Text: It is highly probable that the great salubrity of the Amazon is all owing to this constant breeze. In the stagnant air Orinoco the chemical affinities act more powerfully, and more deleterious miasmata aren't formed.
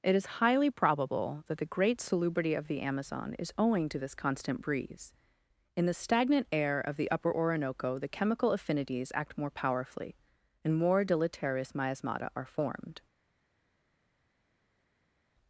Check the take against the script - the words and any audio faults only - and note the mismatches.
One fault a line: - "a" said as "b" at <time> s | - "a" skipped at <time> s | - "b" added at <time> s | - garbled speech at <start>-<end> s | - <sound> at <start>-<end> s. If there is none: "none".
- "all" skipped at 3.5 s
- "of the Upper" added at 6.8 s
- "aren't" said as "are" at 12.3 s